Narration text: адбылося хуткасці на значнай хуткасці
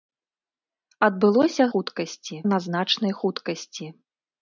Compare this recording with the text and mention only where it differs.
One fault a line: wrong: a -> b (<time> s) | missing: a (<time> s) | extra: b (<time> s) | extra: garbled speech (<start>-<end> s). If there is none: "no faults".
no faults